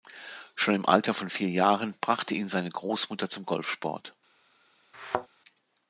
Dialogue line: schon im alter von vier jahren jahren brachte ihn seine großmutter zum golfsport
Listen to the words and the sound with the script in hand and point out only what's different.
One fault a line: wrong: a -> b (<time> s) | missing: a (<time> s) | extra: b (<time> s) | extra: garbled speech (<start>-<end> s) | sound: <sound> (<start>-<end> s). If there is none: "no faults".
missing: jahren (1.9 s)
sound: thud (4.9-5.3 s)